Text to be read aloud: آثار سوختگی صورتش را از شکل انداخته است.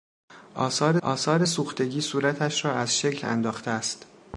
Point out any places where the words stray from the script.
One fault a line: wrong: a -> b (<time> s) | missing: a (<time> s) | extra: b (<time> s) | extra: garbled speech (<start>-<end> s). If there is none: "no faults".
extra: آثار (1.0 s)